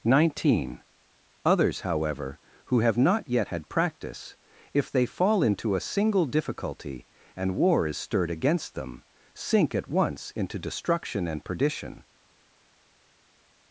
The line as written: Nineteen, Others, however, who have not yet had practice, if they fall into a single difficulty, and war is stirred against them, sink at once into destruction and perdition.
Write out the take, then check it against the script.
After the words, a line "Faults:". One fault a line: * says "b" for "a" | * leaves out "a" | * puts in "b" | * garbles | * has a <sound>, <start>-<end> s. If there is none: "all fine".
Nineteen, Others, however, who have not yet had practice, if they fall into a single difficulty, and war is stirred against them, sink at once into destruction and perdition.
Faults:
all fine